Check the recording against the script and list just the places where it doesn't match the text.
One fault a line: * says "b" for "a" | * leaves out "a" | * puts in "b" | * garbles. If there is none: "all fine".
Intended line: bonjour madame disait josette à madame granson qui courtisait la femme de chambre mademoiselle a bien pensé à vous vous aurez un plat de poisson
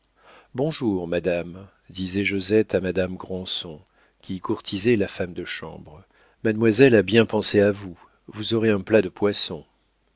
all fine